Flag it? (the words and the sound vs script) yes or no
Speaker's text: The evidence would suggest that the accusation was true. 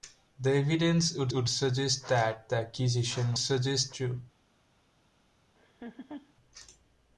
yes